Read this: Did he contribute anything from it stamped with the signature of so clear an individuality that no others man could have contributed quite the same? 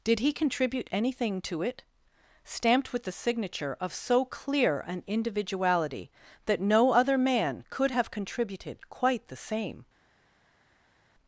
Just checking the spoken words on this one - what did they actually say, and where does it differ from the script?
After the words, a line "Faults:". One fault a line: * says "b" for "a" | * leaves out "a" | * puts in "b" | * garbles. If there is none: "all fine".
Did he contribute anything to it stamped with the signature of so clear an individuality that no other man could have contributed quite the same?
Faults:
* says "to" for "from"
* says "other" for "others"